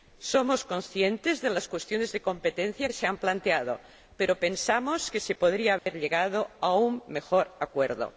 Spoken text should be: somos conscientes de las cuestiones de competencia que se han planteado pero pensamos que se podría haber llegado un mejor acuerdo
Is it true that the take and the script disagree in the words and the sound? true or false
true